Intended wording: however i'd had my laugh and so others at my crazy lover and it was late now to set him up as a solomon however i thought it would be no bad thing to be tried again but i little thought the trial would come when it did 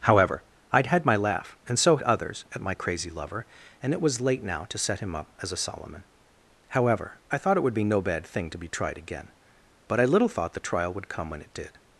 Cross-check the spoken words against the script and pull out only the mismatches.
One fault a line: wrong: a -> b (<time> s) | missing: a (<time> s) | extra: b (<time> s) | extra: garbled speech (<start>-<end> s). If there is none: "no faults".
no faults